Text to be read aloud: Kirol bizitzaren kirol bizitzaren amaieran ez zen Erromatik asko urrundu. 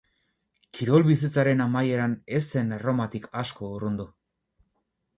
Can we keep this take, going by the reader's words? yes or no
no